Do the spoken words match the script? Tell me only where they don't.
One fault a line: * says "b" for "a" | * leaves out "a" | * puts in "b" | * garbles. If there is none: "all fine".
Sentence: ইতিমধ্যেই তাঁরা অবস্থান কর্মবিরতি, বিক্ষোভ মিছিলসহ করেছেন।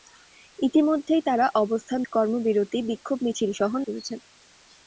all fine